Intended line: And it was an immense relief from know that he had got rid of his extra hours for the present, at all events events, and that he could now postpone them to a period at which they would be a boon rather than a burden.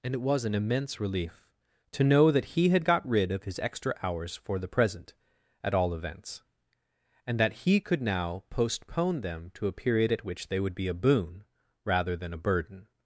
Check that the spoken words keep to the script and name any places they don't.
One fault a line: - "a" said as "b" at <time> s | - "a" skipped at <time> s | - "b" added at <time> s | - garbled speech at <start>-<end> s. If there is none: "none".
- "from" said as "to" at 1.9 s
- "events" skipped at 6.4 s